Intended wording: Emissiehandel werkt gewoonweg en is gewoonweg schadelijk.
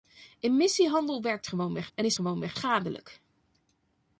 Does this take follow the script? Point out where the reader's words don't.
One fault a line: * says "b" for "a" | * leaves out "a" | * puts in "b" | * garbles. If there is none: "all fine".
all fine